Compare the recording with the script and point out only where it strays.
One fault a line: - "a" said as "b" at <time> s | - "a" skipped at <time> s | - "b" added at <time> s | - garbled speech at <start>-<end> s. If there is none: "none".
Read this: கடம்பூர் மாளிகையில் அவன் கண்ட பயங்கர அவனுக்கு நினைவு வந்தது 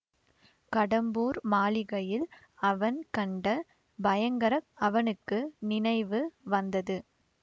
none